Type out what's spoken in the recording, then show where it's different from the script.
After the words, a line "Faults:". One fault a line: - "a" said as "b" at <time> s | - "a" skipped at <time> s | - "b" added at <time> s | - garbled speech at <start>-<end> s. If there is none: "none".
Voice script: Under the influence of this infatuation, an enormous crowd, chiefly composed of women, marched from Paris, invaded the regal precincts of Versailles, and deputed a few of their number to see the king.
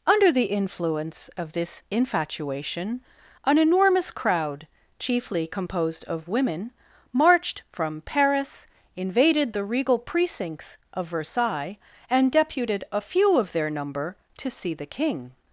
Under the influence of this infatuation, an enormous crowd, chiefly composed of women, marched from Paris, invaded the regal precincts of Versailles, and deputed a few of their number to see the king.
Faults:
none